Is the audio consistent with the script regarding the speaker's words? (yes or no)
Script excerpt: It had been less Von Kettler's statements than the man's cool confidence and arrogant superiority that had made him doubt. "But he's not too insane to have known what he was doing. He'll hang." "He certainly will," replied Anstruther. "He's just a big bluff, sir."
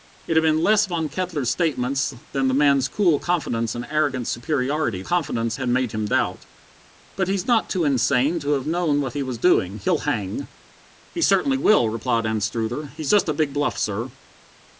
no